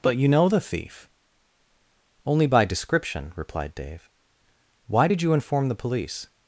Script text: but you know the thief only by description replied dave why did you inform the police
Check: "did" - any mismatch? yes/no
no